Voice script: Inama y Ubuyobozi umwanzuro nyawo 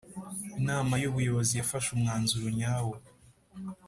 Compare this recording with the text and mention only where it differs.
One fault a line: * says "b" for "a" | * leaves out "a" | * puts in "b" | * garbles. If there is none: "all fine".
* puts in "yafashe"